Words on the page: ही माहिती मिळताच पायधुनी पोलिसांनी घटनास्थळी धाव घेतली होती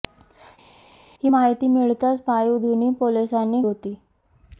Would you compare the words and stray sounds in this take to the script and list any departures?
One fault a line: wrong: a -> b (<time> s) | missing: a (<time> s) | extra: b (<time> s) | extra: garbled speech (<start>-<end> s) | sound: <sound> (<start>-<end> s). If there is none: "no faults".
missing: घटनास्थळी धाव घेतली (3.6 s)